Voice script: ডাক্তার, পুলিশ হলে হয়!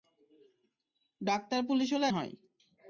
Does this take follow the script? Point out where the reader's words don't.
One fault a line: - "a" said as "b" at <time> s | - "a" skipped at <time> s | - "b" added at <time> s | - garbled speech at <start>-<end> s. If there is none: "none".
none